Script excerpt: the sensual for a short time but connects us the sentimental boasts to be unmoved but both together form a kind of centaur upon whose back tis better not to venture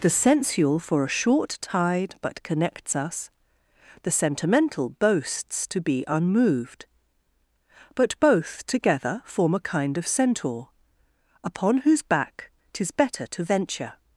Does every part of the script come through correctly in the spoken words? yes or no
no